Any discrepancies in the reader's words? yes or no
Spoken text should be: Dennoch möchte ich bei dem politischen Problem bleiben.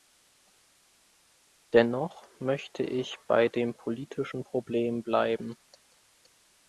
no